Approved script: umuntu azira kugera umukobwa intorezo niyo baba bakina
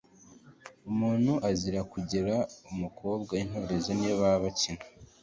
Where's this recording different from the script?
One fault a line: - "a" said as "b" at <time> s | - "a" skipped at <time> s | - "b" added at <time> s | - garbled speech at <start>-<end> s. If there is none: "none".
none